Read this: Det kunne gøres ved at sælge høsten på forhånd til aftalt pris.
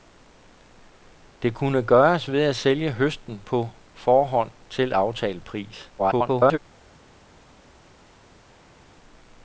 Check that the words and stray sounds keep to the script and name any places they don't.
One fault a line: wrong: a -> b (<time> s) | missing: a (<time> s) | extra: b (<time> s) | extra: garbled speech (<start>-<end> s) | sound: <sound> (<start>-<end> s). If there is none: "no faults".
extra: garbled speech (6.0-6.6 s)